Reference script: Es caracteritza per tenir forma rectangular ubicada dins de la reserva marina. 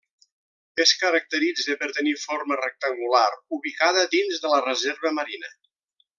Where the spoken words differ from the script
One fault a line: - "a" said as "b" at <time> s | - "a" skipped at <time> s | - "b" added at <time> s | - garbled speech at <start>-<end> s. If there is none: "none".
none